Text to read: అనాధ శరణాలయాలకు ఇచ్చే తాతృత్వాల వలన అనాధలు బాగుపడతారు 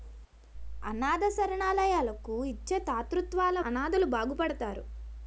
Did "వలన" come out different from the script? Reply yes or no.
yes